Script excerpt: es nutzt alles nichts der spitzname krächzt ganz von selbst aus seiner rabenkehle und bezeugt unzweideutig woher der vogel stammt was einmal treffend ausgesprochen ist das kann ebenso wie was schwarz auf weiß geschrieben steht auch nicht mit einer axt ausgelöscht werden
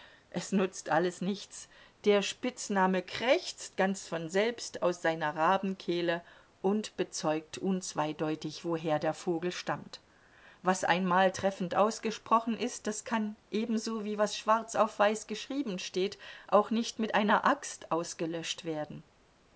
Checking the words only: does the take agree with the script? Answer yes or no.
yes